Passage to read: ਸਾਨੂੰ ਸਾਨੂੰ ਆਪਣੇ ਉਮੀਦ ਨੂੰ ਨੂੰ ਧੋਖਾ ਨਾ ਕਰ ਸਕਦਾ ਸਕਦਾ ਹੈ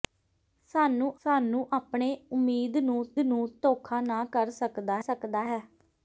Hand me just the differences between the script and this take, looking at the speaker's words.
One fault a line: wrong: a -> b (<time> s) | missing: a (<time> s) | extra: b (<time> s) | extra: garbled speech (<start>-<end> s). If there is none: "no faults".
no faults